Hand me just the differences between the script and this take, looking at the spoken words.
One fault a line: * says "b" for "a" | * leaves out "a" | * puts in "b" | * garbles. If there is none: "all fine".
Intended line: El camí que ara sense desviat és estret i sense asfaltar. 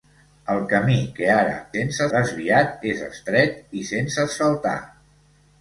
all fine